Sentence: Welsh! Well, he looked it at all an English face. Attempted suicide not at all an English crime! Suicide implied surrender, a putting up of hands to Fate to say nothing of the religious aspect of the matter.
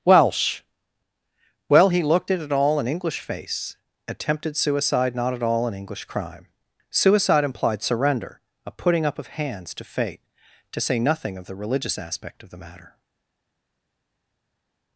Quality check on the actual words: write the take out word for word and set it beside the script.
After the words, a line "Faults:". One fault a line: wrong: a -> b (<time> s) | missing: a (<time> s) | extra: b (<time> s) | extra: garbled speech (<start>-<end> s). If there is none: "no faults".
Welsh! Well, he looked it at all an English face. Attempted suicide not at all an English crime! Suicide implied surrender, a putting up of hands to Fate to say nothing of the religious aspect of the matter.
Faults:
no faults